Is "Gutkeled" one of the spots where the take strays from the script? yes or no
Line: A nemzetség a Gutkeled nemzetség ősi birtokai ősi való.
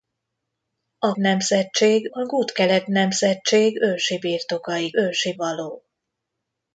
no